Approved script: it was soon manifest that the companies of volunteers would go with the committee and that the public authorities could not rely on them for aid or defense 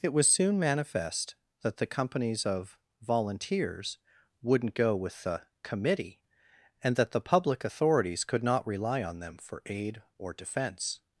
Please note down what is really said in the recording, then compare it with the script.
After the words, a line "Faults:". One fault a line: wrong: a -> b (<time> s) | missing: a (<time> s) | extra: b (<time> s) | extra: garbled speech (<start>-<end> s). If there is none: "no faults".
it was soon manifest that the companies of volunteers wouldn't go with the committee and that the public authorities could not rely on them for aid or defense
Faults:
wrong: would -> wouldn't (4.4 s)